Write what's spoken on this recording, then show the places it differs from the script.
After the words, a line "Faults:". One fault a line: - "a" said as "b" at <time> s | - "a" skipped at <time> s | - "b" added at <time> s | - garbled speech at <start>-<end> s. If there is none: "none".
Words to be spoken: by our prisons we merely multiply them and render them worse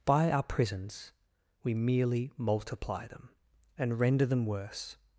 by our prisons we merely multiply them and render them worse
Faults:
none